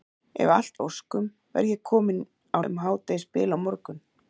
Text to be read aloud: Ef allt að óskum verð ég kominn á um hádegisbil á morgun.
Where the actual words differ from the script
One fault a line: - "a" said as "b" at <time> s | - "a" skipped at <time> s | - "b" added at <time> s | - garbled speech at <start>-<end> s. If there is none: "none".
none